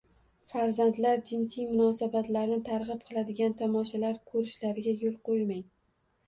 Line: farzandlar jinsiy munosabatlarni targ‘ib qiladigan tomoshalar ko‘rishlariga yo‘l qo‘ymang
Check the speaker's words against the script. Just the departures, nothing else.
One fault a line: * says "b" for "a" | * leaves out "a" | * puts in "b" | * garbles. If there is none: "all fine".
all fine